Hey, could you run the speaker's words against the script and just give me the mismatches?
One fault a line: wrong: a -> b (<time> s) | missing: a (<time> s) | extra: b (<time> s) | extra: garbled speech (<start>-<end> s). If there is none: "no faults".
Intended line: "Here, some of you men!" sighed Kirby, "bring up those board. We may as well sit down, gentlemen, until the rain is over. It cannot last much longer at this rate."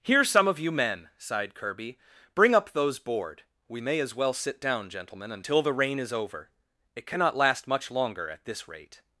no faults